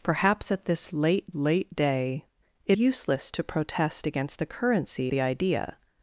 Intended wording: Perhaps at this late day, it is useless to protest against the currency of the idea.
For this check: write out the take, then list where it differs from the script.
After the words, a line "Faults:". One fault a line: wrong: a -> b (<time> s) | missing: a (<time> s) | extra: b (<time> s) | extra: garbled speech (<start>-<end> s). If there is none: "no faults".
Perhaps at this late late day, it useless to protest against the currency the idea.
Faults:
extra: late (1.3 s)
missing: is (2.8 s)
missing: of (5.1 s)